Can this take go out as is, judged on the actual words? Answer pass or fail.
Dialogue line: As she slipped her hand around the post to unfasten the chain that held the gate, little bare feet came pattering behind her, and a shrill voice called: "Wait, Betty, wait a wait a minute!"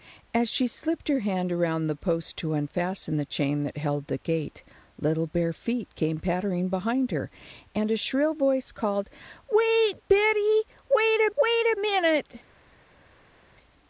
pass